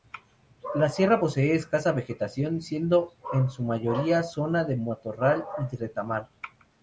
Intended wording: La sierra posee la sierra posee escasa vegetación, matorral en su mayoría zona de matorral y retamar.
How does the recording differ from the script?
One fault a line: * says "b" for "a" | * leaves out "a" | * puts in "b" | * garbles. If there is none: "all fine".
* leaves out "la sierra posee"
* says "siendo" for "matorral"